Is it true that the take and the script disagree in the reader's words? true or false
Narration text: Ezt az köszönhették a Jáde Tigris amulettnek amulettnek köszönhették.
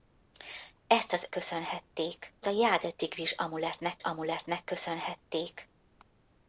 false